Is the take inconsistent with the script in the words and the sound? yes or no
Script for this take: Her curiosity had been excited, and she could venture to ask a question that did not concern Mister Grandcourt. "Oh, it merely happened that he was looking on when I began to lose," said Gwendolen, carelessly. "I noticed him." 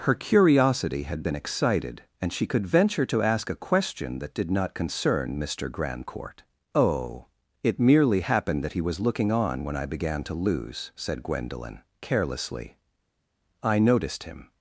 no